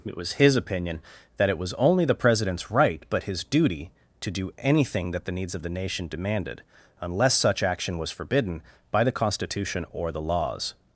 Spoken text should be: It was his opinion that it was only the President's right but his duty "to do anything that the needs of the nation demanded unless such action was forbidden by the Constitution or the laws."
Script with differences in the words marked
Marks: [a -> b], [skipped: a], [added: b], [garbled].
It was his opinion that it was only the President's right but his duty "to do anything that the needs of the nation demanded unless such action was forbidden by the Constitution or the laws."